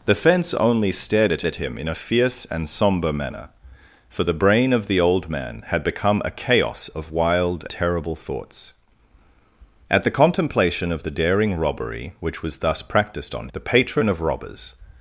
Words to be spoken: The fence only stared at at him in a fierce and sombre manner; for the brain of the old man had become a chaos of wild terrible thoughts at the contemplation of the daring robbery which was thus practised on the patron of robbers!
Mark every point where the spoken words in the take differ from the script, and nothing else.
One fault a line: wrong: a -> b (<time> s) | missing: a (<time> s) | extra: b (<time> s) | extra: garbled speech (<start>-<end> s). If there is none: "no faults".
no faults